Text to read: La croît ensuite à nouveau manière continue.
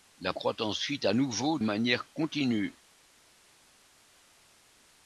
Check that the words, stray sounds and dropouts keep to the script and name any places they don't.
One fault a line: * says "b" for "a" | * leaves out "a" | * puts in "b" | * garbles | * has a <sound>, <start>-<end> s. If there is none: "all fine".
all fine